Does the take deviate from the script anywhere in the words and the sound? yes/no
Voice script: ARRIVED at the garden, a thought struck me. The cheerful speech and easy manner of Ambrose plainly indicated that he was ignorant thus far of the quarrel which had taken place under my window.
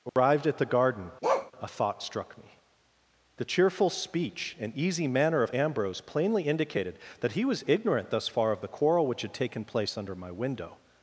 yes